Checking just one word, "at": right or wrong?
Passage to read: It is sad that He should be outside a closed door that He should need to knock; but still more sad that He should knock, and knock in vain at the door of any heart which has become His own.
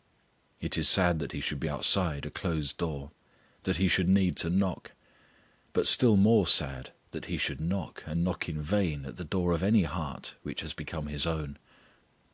right